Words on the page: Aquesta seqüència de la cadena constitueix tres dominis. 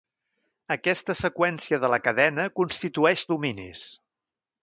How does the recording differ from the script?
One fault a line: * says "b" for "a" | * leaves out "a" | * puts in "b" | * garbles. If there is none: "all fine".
* leaves out "tres"